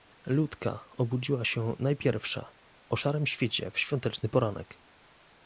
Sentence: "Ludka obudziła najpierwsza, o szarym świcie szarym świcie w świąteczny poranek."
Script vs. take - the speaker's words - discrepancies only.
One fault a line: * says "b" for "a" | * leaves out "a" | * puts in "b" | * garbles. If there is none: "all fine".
* puts in "się"
* leaves out "szarym świcie"